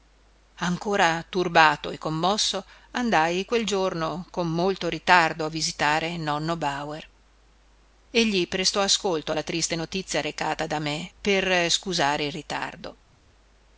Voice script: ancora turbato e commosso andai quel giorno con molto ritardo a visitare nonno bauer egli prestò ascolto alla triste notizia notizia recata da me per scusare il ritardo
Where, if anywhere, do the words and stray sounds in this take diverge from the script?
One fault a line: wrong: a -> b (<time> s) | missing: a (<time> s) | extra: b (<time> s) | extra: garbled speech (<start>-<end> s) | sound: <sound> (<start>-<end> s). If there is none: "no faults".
missing: notizia (10.2 s)